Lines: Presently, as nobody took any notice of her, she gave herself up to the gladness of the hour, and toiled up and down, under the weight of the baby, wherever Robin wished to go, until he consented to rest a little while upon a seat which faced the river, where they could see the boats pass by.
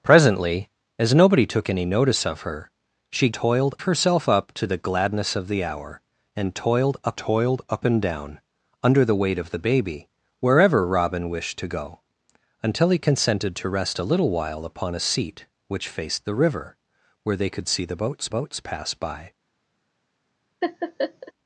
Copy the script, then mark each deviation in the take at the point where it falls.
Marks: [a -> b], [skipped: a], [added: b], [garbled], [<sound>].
Presently, as nobody took any notice of her, she [gave -> toiled] herself up to the gladness of the hour, and toiled up [added: toiled up] and down, under the weight of the baby, wherever Robin wished to go, until he consented to rest a little while upon a seat which faced the river, where they could see the boats [added: boats] pass by. [laugh]